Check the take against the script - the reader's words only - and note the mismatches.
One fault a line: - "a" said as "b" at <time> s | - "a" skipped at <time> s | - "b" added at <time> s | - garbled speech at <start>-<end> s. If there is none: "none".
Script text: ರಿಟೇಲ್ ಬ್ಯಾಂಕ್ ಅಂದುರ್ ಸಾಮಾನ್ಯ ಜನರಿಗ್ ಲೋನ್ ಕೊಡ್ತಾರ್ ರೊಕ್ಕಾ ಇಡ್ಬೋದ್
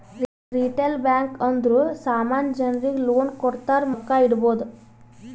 none